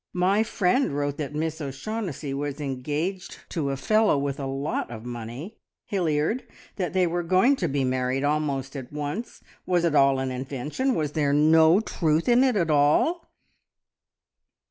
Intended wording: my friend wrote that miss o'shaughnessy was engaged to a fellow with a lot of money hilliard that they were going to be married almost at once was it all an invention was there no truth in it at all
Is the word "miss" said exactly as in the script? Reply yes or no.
yes